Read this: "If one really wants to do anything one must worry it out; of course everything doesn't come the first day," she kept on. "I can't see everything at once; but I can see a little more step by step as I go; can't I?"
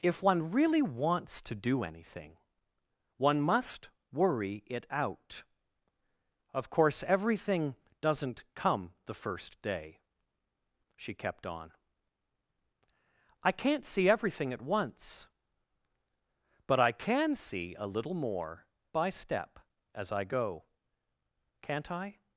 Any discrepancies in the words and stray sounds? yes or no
yes